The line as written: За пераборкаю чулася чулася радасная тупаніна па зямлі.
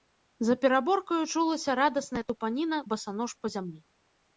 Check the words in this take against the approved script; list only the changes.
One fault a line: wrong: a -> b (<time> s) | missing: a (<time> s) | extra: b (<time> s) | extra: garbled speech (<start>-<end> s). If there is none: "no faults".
missing: чулася (1.8 s)
extra: басанож (2.9 s)